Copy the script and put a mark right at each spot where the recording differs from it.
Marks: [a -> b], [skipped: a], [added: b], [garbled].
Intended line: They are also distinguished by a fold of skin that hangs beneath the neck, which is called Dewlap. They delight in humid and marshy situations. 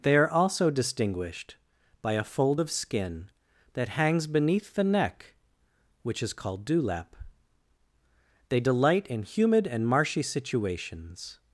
They are also distinguished by a fold of skin that hangs beneath the neck, which is called Dewlap. They delight in humid and marshy situations.